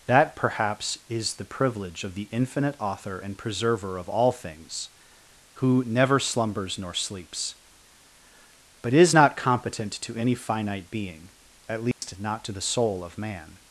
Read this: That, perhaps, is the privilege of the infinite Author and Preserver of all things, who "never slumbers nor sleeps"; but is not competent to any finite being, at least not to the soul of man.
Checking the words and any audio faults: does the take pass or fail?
fail